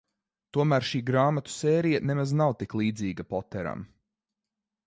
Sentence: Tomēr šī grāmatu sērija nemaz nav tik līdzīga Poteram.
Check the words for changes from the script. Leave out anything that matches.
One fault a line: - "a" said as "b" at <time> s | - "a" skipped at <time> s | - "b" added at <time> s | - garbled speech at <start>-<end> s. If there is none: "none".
none